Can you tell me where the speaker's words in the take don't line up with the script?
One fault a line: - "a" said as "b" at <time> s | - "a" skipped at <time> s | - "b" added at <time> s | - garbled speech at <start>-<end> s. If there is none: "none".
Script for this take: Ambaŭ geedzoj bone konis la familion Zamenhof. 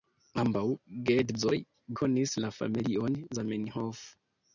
- "bone" skipped at 1.6 s